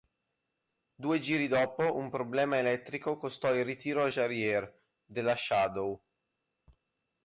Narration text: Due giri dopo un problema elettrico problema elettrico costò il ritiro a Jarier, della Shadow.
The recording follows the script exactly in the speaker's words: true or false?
false